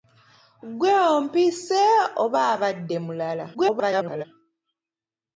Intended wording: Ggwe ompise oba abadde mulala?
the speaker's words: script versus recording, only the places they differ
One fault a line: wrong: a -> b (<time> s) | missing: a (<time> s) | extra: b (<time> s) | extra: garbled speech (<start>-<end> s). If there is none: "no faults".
extra: garbled speech (3.5-4.2 s)